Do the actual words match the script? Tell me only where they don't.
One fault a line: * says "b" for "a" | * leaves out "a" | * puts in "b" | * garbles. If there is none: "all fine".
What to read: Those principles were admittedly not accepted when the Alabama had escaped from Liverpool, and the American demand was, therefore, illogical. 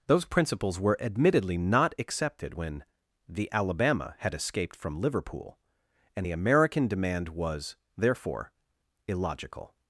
all fine